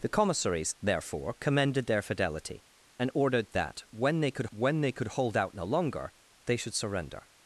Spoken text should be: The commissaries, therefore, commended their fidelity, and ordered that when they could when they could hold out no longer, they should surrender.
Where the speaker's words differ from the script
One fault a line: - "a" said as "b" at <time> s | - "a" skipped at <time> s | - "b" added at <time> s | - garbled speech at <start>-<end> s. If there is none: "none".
none